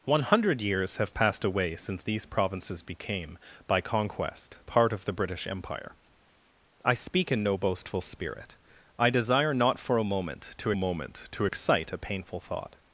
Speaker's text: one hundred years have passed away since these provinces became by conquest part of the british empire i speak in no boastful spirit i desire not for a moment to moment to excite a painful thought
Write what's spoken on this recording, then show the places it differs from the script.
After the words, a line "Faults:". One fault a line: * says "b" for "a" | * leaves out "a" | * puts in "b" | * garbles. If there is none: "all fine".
one hundred years have passed away since these provinces became by conquest part of the british empire i speak in no boastful spirit i desire not for a moment to moment to excite a painful thought
Faults:
all fine